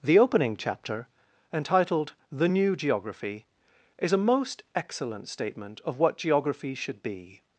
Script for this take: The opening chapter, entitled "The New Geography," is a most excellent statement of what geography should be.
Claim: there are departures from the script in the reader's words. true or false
false